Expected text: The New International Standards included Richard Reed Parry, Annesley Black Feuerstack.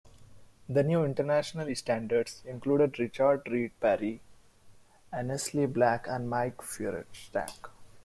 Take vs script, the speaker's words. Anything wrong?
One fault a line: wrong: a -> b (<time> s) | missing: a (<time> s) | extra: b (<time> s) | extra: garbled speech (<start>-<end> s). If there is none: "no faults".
extra: and Mike (6.1 s)